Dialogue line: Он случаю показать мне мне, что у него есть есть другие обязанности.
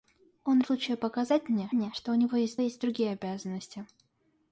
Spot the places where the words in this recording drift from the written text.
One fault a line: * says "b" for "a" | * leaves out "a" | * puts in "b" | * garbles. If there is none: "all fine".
all fine